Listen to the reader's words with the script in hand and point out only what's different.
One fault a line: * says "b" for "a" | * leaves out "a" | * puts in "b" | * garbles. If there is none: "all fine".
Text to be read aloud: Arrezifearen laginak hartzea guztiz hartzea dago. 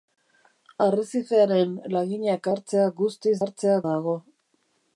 all fine